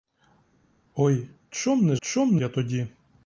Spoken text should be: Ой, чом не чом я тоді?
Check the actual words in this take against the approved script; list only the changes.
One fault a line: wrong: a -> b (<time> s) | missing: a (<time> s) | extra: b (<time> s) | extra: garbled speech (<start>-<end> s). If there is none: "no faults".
no faults